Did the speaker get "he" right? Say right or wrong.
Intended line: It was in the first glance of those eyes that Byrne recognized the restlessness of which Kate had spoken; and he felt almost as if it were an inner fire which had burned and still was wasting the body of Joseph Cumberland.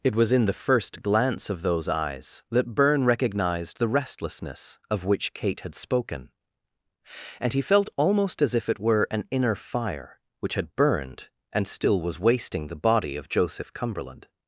right